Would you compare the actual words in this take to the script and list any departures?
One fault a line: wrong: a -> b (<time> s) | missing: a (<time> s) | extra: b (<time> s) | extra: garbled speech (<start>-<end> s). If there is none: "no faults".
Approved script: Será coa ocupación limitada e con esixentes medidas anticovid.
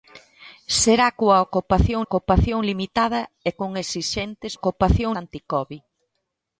extra: ocupación (2.1 s)
wrong: medidas -> ocupación (4.6 s)